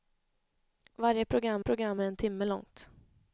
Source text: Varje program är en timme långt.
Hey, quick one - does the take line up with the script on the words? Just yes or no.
no